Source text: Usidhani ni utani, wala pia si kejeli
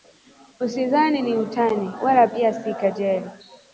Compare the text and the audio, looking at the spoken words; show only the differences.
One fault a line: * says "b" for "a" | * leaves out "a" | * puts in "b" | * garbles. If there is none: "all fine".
all fine